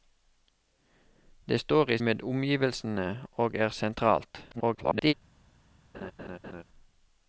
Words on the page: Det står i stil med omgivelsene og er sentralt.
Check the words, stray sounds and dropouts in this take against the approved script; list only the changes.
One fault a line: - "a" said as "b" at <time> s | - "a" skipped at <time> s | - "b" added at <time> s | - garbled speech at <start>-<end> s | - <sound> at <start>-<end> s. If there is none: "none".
- "stil" skipped at 2.0 s
- garbled speech at 4.5-5.1 s
- laugh at 5.9-6.6 s